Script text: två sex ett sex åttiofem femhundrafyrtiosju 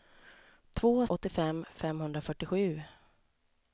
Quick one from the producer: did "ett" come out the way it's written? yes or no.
no